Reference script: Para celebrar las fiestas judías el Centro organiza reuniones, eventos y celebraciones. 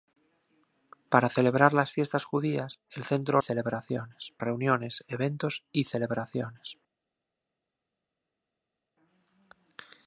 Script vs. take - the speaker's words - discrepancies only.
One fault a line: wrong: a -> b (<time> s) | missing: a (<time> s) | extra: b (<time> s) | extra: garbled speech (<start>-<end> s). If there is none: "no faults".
wrong: organiza -> celebraciones (3.4 s)